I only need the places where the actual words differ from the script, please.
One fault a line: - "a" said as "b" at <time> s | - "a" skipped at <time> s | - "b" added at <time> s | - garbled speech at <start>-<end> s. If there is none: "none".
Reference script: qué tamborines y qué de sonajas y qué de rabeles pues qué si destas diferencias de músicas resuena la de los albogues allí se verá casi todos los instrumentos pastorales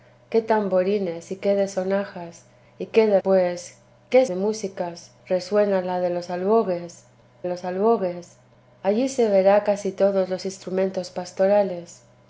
- "rabeles" skipped at 3.2 s
- "si destas diferencias" skipped at 4.2 s
- "los albogues" added at 7.5 s